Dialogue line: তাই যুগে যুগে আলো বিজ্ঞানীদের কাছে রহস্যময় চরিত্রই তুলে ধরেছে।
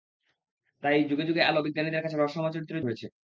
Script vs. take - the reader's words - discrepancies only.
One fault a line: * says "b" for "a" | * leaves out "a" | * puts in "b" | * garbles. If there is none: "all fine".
* leaves out "তুলে"